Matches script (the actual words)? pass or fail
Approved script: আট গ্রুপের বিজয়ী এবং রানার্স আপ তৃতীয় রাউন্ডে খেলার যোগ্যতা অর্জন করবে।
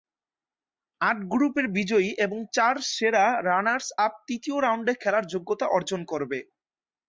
fail